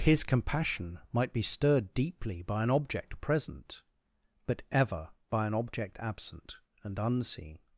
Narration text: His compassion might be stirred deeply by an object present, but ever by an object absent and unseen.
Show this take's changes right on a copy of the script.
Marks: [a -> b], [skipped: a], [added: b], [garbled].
His compassion might be stirred deeply by an object present, but ever by an object absent and unseen.